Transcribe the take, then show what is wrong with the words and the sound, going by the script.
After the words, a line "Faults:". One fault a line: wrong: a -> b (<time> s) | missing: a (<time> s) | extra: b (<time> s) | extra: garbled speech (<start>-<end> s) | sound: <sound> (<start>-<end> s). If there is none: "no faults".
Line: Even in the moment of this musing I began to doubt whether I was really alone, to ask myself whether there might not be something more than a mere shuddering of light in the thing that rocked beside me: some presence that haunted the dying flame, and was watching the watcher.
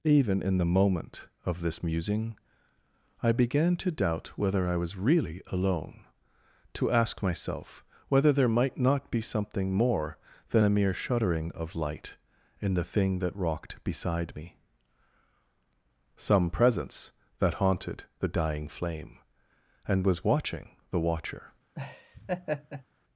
Even in the moment of this musing I began to doubt whether I was really alone, to ask myself whether there might not be something more than a mere shuddering of light in the thing that rocked beside me: some presence that haunted the dying flame, and was watching the watcher.
Faults:
sound: laugh (21.7-22.8 s)